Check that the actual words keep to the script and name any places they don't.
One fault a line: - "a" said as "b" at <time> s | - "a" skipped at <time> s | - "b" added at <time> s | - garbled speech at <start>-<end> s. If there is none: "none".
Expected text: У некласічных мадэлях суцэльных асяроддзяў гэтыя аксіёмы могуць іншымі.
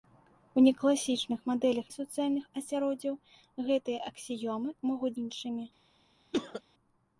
none